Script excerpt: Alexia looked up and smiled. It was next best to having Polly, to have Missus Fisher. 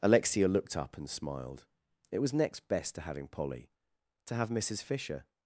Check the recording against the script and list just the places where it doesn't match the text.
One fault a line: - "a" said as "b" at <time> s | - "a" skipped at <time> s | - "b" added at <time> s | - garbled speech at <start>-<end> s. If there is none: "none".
none